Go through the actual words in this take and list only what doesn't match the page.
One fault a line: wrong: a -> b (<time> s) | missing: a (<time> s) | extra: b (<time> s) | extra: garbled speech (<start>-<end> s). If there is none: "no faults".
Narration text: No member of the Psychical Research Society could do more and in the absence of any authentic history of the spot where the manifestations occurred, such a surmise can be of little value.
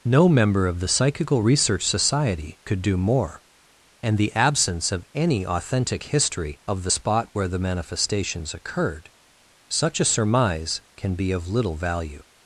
missing: in (4.2 s)